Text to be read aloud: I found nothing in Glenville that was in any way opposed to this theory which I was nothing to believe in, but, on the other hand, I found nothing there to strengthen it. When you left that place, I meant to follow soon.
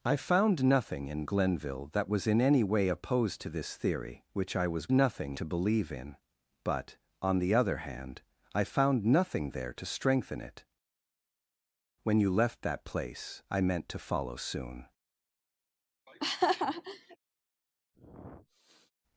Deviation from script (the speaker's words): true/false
false